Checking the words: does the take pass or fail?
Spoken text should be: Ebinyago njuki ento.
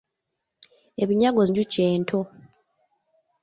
pass